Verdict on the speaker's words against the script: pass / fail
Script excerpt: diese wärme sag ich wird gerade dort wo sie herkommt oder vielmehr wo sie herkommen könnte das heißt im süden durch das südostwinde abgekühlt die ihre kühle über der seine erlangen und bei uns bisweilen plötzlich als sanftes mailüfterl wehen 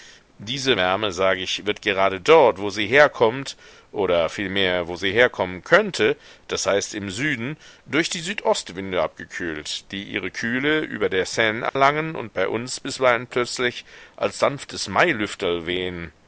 fail